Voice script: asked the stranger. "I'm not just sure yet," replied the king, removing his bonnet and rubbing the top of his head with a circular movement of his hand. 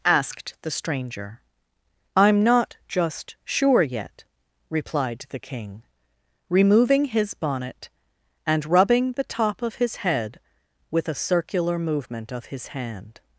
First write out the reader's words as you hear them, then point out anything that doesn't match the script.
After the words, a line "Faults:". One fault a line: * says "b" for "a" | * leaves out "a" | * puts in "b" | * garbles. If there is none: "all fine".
asked the stranger. "I'm not just sure yet," replied the king, removing his bonnet and rubbing the top of his head with a circular movement of his hand.
Faults:
all fine